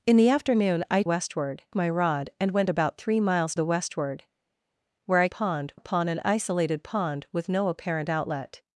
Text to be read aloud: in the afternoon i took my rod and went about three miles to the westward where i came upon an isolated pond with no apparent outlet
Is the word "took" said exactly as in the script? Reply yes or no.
no